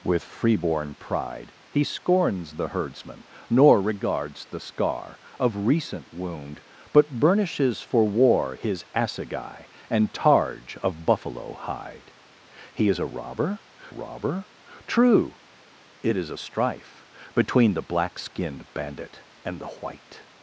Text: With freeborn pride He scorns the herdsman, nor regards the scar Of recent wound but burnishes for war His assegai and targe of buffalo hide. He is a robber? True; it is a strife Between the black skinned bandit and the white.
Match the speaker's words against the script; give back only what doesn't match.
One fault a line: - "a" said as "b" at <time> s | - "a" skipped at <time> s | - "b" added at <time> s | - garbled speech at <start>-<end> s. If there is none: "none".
- "robber" added at 13.9 s